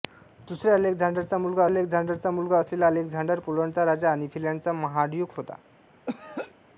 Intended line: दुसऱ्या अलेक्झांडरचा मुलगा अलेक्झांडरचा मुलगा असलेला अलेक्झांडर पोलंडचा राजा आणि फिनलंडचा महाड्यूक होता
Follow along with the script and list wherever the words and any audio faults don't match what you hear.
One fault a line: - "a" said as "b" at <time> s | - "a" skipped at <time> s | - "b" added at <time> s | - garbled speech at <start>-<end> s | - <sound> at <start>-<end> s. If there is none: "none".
- throat clearing at 6.1-6.5 s